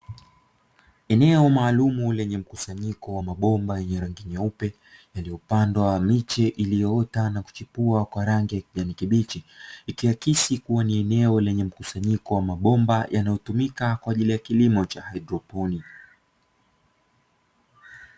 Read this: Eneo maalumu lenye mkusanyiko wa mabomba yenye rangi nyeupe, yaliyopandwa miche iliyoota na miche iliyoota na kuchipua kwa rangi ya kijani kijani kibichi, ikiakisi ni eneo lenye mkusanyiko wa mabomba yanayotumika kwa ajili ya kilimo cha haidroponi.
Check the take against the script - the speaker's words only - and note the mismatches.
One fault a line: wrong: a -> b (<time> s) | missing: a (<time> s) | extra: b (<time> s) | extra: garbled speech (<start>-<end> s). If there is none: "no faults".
missing: miche iliyoota na (7.4 s)
missing: kijani (8.9 s)
extra: kuwa (10.6 s)